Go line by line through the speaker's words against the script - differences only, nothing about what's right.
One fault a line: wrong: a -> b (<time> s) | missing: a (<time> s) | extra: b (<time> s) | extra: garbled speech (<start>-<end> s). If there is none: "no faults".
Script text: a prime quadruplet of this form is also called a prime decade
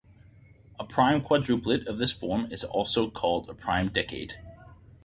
no faults